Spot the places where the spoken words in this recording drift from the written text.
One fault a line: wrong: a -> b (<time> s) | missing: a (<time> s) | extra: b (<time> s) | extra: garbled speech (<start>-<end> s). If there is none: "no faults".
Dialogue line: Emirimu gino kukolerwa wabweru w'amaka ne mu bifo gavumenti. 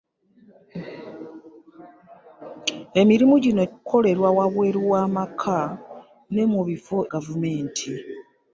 no faults